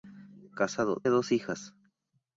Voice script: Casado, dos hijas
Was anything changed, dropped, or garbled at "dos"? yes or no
no